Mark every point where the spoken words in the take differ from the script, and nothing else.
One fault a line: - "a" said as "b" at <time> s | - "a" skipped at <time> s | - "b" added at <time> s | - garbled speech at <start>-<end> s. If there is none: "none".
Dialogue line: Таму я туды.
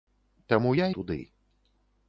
none